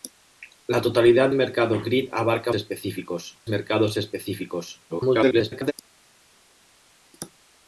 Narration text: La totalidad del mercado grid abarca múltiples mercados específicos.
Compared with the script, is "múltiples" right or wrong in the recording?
wrong